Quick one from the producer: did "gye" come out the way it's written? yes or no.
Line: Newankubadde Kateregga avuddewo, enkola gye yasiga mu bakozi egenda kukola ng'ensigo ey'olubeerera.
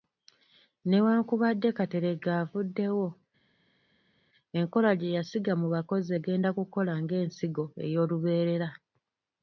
yes